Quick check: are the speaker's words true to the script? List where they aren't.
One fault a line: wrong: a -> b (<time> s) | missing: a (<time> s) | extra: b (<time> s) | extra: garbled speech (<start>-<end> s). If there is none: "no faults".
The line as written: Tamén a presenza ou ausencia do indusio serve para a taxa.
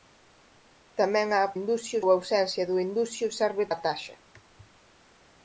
wrong: presenza -> indusio (1.6 s)
missing: para (3.6 s)